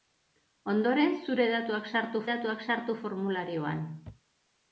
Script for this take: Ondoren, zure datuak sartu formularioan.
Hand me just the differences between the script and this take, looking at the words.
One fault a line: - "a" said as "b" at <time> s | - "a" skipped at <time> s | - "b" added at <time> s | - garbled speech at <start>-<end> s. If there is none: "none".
- "datuak sartu" added at 2.3 s